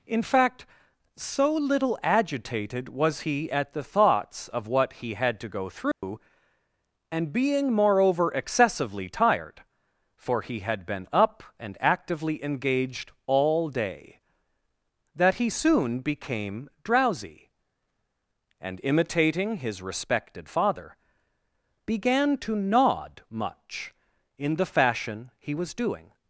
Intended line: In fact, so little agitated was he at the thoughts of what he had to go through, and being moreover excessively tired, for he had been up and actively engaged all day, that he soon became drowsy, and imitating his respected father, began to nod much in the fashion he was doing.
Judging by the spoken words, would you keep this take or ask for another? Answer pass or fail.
pass